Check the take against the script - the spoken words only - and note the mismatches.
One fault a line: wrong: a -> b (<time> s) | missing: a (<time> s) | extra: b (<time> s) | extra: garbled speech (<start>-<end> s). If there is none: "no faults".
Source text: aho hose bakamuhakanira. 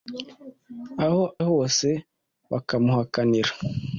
no faults